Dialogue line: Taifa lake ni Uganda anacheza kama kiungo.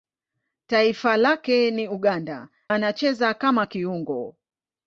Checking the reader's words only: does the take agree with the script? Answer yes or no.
yes